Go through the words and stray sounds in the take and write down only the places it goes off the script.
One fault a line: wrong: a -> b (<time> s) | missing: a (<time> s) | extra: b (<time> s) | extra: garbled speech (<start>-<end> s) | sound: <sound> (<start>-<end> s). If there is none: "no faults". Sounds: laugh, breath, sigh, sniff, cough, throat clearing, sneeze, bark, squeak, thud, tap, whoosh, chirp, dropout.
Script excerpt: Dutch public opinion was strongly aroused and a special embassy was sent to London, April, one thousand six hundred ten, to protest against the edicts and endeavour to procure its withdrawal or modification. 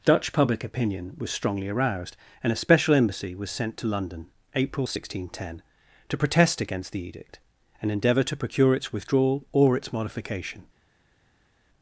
wrong: edicts -> edict (7.0 s)
extra: its (9.8 s)